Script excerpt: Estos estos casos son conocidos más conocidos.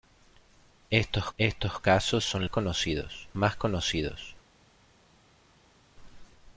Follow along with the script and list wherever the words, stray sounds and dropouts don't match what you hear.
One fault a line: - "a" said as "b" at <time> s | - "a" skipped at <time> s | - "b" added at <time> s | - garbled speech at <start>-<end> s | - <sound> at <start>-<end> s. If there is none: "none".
none